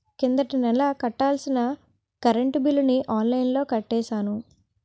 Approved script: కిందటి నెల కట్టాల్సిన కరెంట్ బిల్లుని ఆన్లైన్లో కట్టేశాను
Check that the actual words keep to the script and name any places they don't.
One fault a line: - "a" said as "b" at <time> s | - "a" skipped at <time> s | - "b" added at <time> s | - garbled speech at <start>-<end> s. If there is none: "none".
none